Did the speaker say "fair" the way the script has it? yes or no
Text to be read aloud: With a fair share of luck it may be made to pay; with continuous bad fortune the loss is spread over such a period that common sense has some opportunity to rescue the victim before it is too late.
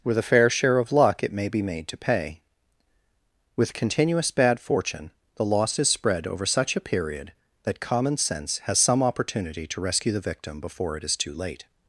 yes